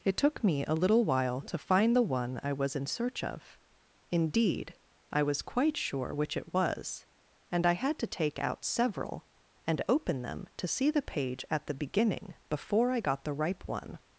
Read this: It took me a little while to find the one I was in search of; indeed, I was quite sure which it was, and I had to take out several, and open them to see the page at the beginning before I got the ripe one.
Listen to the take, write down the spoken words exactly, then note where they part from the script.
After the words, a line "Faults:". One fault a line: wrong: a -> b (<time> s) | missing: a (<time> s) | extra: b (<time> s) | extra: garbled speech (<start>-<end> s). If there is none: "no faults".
It took me a little while to find the one I was in search of; indeed, I was quite sure which it was, and I had to take out several, and open them to see the page at the beginning before I got the ripe one.
Faults:
no faults